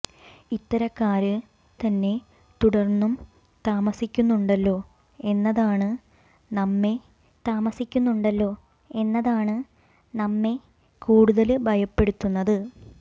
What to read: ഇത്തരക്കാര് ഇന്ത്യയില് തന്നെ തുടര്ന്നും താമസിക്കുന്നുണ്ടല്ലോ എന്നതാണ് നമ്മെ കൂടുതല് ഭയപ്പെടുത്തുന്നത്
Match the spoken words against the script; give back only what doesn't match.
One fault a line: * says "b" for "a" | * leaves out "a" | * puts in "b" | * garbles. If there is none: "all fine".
* leaves out "ഇന്ത്യയില്"
* puts in "താമസിക്കുന്നുണ്ടല്ലോ എന്നതാണ് നമ്മെ"